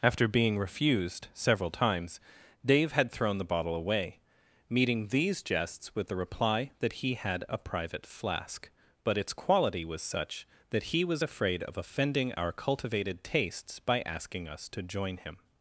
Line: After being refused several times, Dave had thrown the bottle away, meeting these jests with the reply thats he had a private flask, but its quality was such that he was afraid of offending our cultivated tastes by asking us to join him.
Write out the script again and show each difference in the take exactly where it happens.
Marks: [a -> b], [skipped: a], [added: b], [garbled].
After being refused several times, Dave had thrown the bottle away, meeting these jests with the reply [thats -> that] he had a private flask, but its quality was such that he was afraid of offending our cultivated tastes by asking us to join him.